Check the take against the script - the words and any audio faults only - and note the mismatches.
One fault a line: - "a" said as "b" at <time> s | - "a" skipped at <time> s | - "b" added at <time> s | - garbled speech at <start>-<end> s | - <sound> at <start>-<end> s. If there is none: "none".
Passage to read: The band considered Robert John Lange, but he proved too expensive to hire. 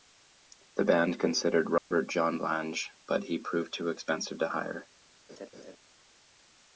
- dropout at 1.8-1.9 s
- laugh at 5.3-5.8 s